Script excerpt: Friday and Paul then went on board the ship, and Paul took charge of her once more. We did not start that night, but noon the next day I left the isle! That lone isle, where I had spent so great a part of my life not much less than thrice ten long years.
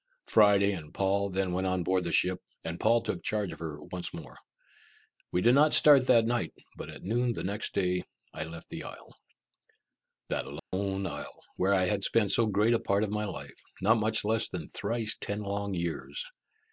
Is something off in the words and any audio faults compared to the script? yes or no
yes